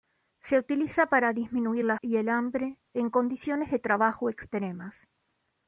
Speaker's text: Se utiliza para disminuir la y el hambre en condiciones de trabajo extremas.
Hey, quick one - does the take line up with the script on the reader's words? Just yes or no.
yes